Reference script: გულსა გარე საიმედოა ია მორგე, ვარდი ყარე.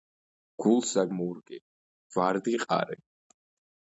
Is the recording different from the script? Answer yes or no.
yes